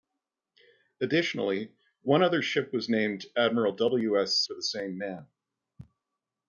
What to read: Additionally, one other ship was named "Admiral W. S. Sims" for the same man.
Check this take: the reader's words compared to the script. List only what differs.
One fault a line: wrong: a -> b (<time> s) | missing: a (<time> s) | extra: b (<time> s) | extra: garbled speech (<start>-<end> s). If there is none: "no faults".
missing: Sims (4.4 s)